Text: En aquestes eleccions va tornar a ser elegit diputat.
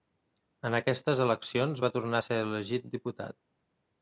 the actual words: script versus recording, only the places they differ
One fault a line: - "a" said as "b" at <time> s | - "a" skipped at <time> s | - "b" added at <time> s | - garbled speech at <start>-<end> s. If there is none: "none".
none